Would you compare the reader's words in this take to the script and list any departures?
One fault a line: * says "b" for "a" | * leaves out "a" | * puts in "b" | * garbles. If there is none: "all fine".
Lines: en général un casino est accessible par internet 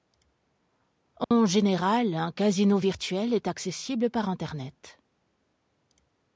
* puts in "virtuel"